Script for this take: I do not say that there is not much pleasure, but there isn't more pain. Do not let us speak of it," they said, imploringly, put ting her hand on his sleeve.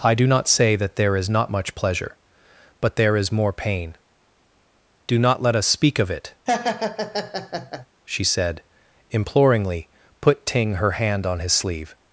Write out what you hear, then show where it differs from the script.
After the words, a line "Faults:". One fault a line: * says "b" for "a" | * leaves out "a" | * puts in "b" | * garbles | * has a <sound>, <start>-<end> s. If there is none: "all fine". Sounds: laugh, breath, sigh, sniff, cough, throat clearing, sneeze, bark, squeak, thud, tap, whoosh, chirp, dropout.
I do not say that there is not much pleasure, but there is more pain. Do not let us speak of it," she said, imploringly, put ting her hand on his sleeve.
Faults:
* says "is" for "isn't"
* has a laugh, 6.5-7.9 s
* says "she" for "they"